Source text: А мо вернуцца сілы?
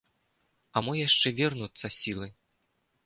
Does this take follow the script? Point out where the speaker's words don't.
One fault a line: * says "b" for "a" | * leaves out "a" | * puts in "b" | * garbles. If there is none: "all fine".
* puts in "яшчэ"